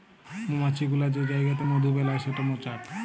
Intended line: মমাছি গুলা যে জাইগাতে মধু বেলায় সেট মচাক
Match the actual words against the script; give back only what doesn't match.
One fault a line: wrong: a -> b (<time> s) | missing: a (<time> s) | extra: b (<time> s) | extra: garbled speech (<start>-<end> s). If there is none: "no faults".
no faults